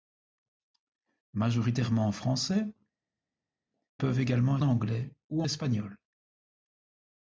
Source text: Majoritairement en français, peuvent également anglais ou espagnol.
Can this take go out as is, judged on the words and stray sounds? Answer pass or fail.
pass